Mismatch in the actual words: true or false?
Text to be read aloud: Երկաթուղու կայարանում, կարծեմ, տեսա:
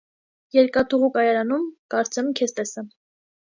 true